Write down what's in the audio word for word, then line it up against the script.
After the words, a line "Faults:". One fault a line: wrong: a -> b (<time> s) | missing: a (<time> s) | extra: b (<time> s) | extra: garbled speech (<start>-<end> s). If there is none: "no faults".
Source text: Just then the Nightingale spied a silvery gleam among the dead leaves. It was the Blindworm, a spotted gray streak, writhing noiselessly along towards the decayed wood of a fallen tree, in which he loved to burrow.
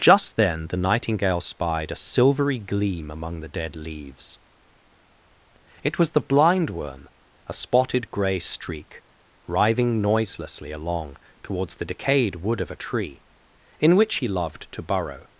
Just then the Nightingale spied a silvery gleam among the dead leaves. It was the Blindworm, a spotted gray streak, writhing noiselessly along towards the decayed wood of a tree, in which he loved to burrow.
Faults:
missing: fallen (12.8 s)